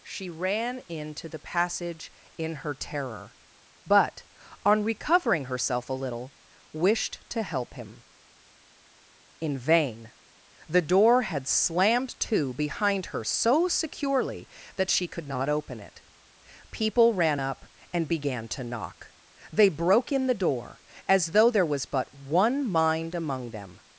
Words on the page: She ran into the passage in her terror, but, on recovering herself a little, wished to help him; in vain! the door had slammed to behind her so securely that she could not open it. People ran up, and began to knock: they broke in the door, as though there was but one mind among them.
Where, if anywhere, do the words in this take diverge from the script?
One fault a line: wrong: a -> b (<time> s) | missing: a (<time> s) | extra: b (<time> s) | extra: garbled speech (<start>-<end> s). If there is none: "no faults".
no faults